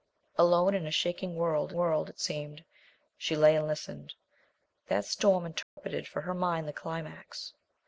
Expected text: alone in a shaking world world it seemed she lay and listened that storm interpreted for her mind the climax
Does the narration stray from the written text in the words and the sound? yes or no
yes